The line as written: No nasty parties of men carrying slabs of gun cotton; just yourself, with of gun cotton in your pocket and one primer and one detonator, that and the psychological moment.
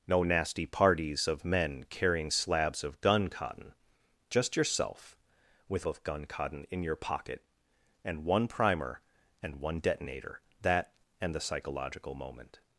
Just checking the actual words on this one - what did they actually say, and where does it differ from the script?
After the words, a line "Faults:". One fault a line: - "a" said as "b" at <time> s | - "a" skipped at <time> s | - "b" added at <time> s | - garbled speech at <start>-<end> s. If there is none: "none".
No nasty parties of men carrying slabs of gun cotton; just yourself, with of gun cotton in your pocket and one primer and one detonator, that and the psychological moment.
Faults:
none